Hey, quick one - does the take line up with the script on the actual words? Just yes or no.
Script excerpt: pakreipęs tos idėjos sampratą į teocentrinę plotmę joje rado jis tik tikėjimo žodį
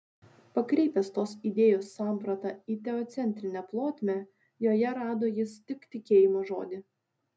yes